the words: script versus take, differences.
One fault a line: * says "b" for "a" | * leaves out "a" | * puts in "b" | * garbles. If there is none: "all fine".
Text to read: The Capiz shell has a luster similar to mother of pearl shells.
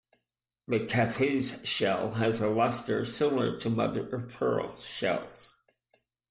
all fine